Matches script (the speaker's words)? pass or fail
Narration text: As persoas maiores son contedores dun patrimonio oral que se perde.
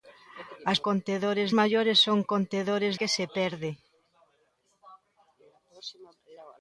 fail